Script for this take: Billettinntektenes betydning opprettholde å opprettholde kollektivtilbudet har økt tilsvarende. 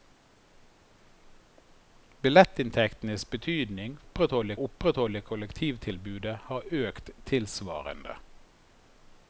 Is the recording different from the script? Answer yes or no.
no